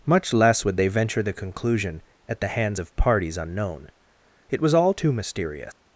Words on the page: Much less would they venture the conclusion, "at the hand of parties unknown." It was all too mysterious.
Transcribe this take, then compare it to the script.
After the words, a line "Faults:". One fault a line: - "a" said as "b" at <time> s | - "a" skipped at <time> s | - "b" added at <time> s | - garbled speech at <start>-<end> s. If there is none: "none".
Much less would they venture the conclusion, "at the hands of parties unknown." It was all too mysterious.
Faults:
- "hand" said as "hands" at 2.5 s